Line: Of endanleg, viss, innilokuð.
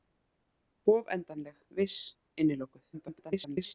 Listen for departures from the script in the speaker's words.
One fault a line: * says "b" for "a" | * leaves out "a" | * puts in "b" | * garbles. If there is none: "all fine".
* garbles